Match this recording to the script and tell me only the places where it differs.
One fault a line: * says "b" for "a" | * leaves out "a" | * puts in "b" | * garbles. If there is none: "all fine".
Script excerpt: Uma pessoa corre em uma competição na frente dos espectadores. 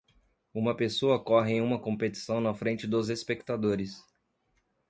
all fine